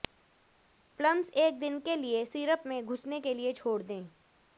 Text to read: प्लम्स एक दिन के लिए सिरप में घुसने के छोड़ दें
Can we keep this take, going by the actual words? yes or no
no